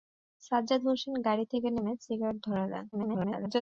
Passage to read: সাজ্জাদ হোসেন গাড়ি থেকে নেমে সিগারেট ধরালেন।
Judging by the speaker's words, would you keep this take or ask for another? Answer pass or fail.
fail